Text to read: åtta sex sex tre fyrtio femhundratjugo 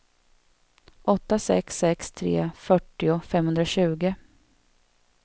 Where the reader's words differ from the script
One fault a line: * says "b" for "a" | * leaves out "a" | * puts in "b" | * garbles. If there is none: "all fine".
all fine